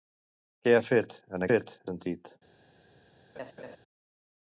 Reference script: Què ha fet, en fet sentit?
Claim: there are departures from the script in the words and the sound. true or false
true